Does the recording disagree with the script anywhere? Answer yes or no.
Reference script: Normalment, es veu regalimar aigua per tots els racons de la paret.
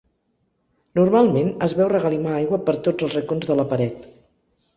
no